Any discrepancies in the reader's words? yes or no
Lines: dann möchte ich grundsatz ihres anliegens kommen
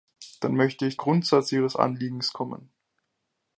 no